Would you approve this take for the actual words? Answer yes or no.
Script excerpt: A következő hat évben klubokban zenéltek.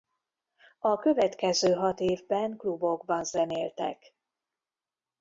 yes